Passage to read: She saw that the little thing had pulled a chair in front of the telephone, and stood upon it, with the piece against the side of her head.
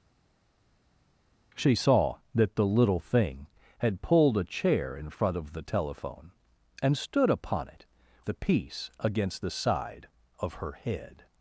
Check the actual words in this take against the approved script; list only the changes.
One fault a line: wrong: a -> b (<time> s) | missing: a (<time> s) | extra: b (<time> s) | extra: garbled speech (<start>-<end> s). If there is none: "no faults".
missing: with (7.8 s)